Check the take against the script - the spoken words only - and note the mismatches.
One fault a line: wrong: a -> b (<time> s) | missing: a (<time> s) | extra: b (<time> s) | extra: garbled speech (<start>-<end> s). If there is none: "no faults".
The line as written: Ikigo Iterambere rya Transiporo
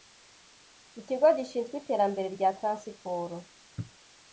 extra: Gishinzwe (1.4 s)